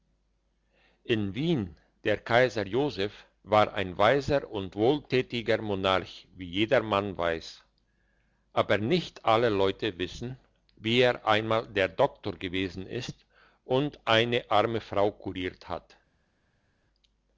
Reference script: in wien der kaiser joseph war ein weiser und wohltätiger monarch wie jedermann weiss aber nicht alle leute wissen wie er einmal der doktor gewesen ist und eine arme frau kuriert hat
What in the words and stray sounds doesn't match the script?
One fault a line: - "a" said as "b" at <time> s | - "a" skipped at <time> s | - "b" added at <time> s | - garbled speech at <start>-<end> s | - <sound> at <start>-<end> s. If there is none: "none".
none